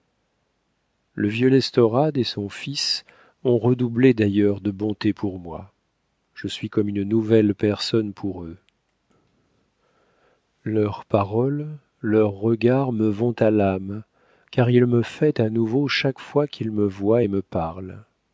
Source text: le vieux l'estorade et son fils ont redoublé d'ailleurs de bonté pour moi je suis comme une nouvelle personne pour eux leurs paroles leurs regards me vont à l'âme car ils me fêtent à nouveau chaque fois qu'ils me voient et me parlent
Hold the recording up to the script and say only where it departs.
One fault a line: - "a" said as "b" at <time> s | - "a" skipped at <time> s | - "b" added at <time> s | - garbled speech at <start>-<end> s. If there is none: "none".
none